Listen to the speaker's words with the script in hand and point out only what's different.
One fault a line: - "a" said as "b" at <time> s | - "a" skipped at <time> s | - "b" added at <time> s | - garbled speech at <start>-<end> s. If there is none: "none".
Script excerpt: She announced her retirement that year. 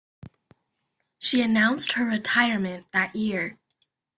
none